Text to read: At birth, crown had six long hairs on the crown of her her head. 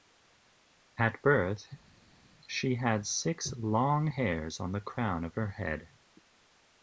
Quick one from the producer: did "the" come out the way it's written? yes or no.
yes